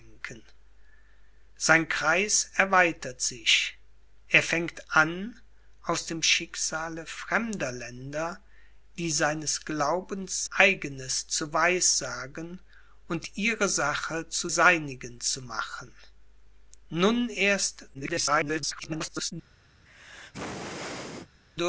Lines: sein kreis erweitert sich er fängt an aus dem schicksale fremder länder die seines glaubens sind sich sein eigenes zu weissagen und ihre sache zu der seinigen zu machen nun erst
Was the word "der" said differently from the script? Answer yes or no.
yes